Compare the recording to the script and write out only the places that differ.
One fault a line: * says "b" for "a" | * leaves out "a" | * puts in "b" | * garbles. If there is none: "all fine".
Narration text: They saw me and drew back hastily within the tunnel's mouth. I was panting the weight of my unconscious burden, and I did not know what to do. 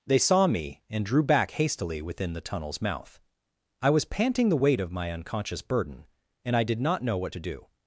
all fine